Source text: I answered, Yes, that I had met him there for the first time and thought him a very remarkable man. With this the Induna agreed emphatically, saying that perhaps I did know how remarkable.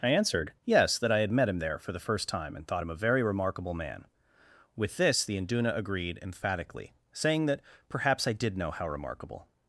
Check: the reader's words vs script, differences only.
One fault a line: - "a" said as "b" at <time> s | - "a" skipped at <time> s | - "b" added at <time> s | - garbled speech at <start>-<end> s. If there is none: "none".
none